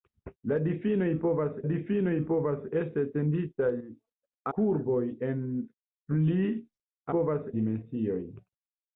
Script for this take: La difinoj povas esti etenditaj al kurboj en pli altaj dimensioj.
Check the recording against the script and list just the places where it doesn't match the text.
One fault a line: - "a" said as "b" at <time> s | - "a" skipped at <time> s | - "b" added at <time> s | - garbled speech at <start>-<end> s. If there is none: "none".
- "difinoj povas" added at 1.7 s
- "al" skipped at 3.7 s
- "altaj" said as "povas" at 7.1 s